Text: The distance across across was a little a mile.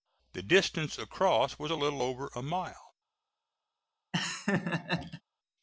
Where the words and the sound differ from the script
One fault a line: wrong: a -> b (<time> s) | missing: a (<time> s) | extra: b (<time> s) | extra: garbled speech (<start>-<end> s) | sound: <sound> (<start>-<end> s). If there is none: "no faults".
missing: across (1.6 s)
extra: over (2.0 s)
sound: laugh (4.1-5.2 s)